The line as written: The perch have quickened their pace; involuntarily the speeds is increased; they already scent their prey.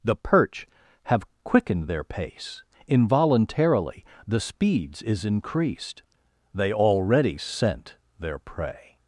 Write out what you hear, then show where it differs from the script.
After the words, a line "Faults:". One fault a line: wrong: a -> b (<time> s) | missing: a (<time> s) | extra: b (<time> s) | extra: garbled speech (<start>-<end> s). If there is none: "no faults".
The perch have quickened their pace; involuntarily the speeds is increased; they already scent their prey.
Faults:
no faults